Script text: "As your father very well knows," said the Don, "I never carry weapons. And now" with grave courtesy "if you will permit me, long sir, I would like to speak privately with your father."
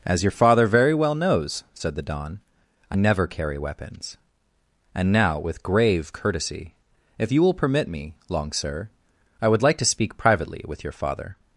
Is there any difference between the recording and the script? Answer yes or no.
no